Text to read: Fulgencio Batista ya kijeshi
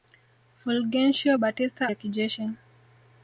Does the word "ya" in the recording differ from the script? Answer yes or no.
no